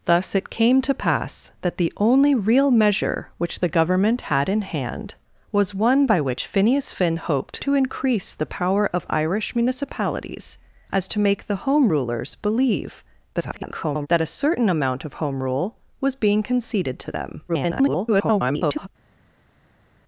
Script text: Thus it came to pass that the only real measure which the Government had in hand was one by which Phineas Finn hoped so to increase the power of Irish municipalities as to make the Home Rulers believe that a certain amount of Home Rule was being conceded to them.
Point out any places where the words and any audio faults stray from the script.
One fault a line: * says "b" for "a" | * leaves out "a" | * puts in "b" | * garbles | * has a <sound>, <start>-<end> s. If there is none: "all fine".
* leaves out "so"
* garbles
* garbles